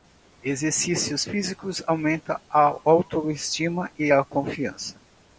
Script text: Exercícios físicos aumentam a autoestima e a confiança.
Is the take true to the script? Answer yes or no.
yes